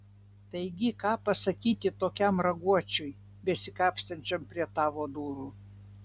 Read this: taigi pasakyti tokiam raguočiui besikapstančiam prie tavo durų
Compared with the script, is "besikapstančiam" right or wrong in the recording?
right